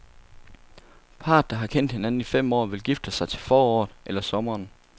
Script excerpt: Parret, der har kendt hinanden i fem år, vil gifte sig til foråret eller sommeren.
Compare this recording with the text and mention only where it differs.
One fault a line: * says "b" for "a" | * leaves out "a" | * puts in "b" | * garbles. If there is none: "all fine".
all fine